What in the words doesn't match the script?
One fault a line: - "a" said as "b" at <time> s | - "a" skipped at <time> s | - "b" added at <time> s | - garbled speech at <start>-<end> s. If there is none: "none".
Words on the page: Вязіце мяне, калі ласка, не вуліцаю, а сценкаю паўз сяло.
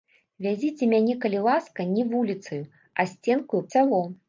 - "паўз" skipped at 3.6 s